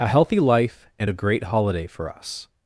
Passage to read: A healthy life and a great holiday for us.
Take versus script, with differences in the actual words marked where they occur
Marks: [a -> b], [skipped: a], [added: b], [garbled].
A healthy life and a great holiday for us.